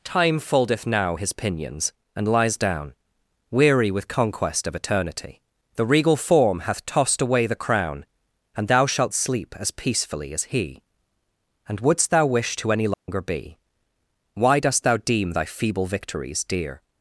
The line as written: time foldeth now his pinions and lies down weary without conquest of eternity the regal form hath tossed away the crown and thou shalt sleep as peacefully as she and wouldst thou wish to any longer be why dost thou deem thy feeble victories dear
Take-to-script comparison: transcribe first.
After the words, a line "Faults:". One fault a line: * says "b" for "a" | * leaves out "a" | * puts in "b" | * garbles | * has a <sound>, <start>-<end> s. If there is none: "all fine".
time foldeth now his pinions and lies down weary with conquest of eternity the regal form hath tossed away the crown and thou shalt sleep as peacefully as he and wouldst thou wish to any longer be why dost thou deem thy feeble victories dear
Faults:
* says "with" for "without"
* says "he" for "she"
* has a dropout, 12.9-13.1 s